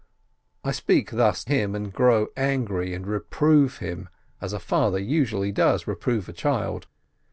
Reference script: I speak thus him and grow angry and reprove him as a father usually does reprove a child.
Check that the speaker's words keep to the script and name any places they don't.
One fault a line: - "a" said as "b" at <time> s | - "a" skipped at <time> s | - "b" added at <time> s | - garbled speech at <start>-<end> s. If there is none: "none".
none